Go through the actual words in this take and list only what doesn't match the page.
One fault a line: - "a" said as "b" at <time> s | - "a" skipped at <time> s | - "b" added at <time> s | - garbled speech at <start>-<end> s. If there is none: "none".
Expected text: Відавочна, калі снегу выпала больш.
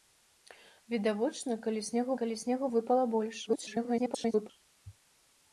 - "калі снегу" added at 2.2 s
- garbled speech at 3.5-4.5 s